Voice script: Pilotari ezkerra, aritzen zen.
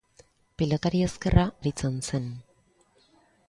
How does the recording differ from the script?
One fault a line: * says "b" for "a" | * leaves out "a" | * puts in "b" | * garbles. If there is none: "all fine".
all fine